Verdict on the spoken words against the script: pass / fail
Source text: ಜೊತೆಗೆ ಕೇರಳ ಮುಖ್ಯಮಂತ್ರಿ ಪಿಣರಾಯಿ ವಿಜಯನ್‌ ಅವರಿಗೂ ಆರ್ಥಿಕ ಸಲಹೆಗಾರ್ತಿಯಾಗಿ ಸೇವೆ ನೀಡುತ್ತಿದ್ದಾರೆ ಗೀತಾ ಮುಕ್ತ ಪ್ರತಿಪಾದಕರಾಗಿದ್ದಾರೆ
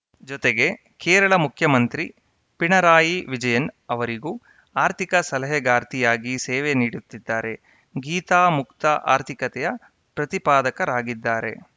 fail